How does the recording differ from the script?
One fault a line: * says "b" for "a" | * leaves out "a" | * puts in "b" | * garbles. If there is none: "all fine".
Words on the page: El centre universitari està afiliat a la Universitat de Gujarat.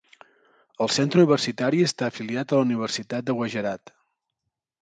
all fine